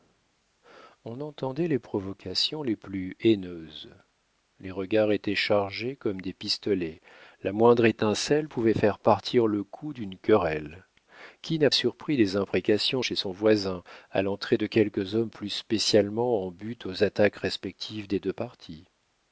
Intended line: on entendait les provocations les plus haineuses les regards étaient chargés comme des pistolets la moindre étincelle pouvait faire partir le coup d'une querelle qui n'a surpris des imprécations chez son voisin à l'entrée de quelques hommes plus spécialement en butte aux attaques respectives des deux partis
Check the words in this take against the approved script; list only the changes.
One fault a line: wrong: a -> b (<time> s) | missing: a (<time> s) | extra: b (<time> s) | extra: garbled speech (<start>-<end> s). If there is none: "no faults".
no faults